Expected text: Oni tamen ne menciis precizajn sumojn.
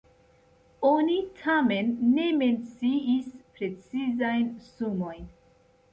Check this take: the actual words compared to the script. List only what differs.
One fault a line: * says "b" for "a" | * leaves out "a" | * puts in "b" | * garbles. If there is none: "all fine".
all fine